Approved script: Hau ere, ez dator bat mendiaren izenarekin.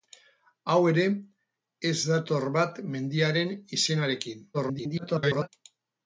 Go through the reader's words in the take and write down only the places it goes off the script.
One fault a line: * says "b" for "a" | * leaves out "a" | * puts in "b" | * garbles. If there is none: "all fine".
* garbles